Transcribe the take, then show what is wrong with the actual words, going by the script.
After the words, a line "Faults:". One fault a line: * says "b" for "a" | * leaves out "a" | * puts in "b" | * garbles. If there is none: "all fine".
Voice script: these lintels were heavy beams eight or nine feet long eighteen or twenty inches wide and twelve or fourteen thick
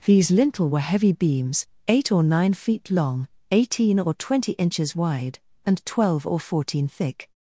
these lintel were heavy beams eight or nine feet long eighteen or twenty inches wide and twelve or fourteen thick
Faults:
* says "lintel" for "lintels"